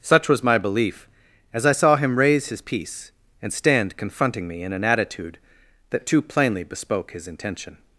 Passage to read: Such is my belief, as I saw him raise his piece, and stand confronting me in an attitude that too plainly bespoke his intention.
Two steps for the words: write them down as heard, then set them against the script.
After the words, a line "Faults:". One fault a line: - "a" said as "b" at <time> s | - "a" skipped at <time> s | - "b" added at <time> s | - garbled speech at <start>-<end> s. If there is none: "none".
Such was my belief, as I saw him raise his piece, and stand confronting me in an attitude that too plainly bespoke his intention.
Faults:
- "is" said as "was" at 0.3 s